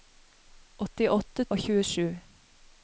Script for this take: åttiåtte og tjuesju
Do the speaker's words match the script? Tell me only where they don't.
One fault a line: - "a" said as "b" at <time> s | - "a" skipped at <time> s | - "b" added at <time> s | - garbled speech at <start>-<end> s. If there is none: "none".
none